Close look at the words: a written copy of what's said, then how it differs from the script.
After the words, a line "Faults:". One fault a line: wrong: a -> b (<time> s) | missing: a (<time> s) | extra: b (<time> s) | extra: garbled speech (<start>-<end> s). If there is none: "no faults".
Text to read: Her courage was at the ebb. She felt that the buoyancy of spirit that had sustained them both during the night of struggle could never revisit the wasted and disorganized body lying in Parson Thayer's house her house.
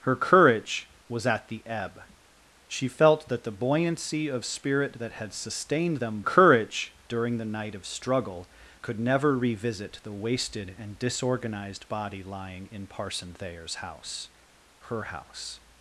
Her courage was at the ebb. She felt that the buoyancy of spirit that had sustained them courage during the night of struggle could never revisit the wasted and disorganized body lying in Parson Thayer's house her house.
Faults:
wrong: both -> courage (6.2 s)